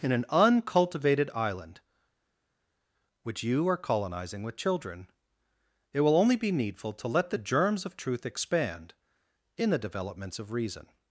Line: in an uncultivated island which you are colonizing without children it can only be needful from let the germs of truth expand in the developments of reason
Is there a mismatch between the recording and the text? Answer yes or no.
yes